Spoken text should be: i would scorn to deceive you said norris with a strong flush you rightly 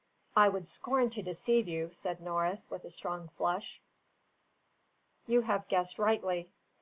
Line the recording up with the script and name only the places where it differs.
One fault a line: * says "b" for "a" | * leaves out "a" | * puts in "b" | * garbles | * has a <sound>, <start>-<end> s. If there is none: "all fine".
* puts in "have guessed"